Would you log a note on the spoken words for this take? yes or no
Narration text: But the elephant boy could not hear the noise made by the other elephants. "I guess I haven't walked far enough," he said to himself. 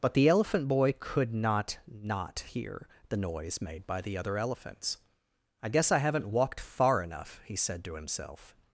yes